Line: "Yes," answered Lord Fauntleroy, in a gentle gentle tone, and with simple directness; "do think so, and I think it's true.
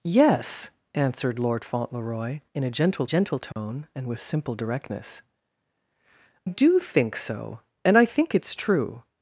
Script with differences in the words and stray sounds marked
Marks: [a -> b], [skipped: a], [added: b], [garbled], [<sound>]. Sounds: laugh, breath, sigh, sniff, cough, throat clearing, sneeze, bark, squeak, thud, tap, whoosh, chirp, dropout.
"Yes," answered Lord Fauntleroy, in a gentle gentle tone, [dropout] and with simple directness; "do think so, and I think it's true.